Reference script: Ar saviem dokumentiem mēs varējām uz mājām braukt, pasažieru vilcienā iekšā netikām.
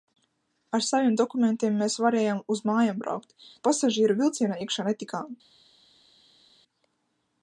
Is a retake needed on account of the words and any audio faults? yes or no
no